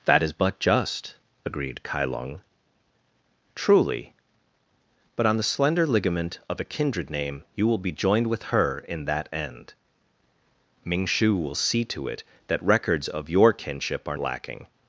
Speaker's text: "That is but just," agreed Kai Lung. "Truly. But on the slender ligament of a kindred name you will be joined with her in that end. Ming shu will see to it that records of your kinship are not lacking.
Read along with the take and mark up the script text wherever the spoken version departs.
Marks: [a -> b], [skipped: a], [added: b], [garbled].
"That is but just," agreed Kai Lung. "Truly. But on the slender ligament of a kindred name you will be joined with her in that end. Ming shu will see to it that records of your kinship are [skipped: not] lacking.